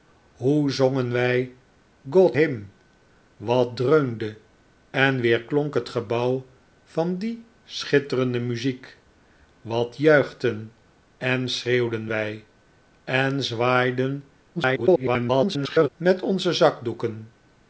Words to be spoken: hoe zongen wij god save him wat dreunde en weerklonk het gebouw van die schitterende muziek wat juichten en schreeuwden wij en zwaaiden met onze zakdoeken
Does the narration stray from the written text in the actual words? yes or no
yes